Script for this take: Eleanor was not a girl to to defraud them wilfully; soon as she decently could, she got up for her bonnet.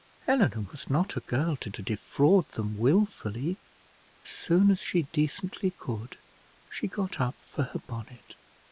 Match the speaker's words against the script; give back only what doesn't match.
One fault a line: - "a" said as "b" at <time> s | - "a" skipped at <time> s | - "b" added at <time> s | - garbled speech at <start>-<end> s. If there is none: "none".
none